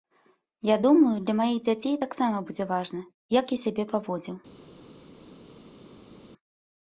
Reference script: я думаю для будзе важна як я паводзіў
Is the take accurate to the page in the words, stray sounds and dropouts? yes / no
no